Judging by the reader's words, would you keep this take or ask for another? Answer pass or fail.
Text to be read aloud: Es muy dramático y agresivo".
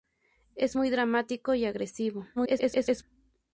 fail